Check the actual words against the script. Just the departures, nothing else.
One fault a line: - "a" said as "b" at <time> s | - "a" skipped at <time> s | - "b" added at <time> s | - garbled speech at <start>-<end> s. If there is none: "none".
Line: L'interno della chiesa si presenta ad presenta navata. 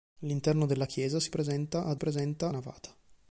none